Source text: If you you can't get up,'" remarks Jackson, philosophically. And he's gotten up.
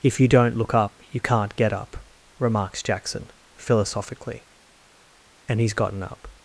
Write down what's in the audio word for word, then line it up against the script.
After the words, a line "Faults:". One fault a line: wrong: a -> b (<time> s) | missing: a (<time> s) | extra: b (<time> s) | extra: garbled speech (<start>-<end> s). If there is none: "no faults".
If you don't look up you can't get up,'" remarks Jackson, philosophically. And he's gotten up.
Faults:
extra: don't look up (0.3 s)